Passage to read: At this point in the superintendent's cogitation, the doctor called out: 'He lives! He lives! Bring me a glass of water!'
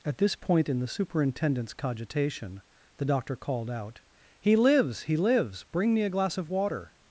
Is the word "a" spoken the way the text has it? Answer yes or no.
yes